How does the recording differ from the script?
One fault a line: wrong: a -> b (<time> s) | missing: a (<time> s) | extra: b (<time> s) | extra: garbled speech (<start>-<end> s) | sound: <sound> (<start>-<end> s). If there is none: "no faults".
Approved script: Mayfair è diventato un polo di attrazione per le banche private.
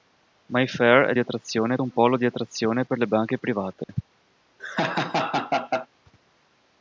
wrong: diventato -> attrazione (1.2 s)
sound: dropout (3.8-3.9 s)
sound: laugh (4.6-5.9 s)